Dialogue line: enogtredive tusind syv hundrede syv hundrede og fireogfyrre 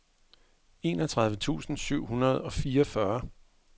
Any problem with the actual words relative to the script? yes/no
yes